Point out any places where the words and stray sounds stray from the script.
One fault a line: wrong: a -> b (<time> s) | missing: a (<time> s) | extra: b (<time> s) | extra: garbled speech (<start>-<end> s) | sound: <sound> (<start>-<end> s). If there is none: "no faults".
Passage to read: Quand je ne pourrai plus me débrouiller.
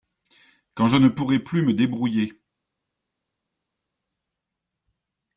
no faults